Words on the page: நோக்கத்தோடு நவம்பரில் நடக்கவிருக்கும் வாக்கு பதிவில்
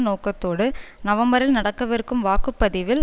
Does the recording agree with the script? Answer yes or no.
yes